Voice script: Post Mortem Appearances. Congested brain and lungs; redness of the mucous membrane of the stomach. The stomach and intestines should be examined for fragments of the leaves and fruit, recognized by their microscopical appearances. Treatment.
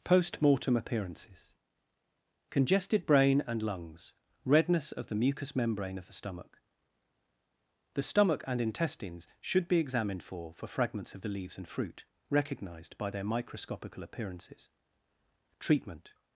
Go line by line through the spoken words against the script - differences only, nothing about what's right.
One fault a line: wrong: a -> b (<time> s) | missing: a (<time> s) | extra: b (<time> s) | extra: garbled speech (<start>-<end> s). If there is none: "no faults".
extra: for (10.5 s)